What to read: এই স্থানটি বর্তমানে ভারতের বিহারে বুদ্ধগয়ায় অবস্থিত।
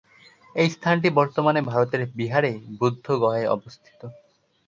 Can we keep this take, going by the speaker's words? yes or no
yes